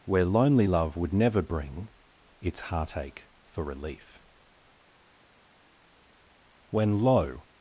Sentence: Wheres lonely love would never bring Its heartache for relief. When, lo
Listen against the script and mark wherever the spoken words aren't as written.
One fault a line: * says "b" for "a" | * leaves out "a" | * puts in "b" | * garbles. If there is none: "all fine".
* says "Where" for "Wheres"